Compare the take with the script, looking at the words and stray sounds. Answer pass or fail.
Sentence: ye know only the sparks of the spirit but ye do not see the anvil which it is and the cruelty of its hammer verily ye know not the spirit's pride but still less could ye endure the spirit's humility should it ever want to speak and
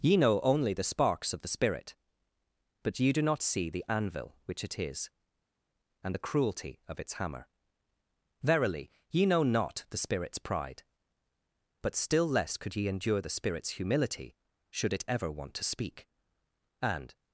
pass